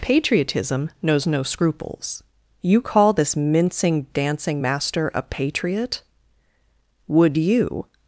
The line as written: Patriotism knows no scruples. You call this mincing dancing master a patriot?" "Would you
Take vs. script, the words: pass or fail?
pass